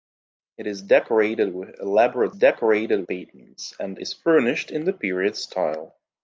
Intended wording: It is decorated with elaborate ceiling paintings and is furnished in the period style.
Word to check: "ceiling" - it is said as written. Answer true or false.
false